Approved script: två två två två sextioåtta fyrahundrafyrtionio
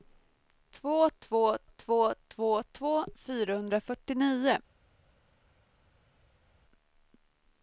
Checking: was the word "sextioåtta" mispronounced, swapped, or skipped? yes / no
yes